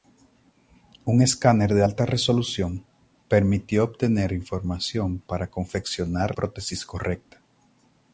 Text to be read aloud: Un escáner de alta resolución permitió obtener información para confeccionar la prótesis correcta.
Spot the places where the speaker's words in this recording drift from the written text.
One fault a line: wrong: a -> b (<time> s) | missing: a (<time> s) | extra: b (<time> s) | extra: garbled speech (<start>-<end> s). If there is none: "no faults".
missing: la (6.4 s)